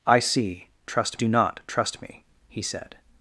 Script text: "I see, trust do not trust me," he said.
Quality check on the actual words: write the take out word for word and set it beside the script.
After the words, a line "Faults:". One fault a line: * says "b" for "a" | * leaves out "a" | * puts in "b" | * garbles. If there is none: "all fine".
"I see, trust do not trust me," he said.
Faults:
all fine